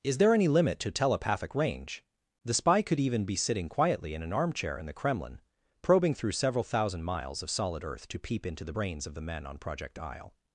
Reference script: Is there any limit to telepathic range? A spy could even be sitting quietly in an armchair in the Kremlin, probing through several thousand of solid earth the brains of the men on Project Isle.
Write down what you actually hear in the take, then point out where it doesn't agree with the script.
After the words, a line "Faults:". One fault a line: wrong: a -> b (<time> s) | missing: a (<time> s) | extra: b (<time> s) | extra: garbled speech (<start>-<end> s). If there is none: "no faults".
Is there any limit to telepathic range? The spy could even be sitting quietly in an armchair in the Kremlin, probing through several thousand miles of solid earth to peep into the brains of the men on Project Isle.
Faults:
wrong: A -> The (2.4 s)
extra: miles (7.0 s)
extra: to peep into (8.1 s)